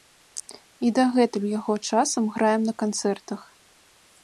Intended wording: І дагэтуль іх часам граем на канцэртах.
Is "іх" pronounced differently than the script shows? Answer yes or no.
yes